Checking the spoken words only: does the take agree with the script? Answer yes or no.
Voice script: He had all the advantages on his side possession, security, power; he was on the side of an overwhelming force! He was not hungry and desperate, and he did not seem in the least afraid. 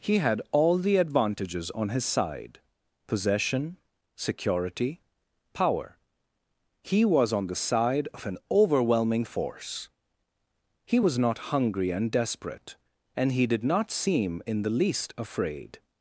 yes